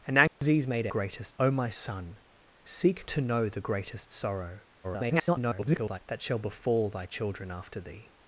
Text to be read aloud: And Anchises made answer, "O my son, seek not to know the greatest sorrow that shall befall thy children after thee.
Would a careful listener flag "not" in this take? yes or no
yes